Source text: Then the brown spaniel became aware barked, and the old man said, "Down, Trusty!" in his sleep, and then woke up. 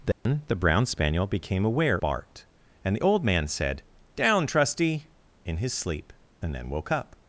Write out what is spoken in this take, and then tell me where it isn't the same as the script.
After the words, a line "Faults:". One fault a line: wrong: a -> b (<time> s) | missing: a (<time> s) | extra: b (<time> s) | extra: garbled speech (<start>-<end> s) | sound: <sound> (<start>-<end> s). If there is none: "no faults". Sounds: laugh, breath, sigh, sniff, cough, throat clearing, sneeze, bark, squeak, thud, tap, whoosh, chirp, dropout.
Then the brown spaniel became aware barked, and the old man said, "Down, Trusty!" in his sleep, and then woke up.
Faults:
sound: dropout (0.1-0.3 s)